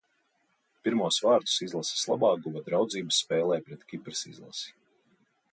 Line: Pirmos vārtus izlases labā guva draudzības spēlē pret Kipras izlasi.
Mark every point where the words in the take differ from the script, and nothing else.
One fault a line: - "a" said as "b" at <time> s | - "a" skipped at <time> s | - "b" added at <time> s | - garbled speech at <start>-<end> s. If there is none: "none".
none